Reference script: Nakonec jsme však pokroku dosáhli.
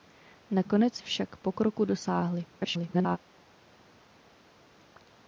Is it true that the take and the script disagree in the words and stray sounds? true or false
true